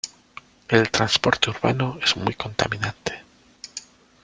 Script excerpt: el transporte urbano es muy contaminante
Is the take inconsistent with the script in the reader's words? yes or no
no